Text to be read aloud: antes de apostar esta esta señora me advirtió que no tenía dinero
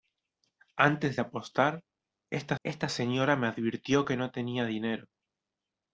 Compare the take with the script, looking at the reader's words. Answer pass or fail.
pass